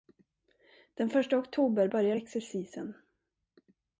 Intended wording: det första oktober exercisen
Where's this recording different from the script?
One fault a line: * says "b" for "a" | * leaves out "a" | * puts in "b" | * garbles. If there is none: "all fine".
* says "den" for "det"
* puts in "börjar"